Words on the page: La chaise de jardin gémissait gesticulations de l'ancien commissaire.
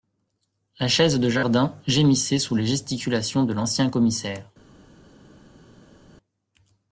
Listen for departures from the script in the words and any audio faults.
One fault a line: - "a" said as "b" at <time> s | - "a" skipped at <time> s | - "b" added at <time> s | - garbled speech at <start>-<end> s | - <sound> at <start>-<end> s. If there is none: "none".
- "sous les" added at 2.4 s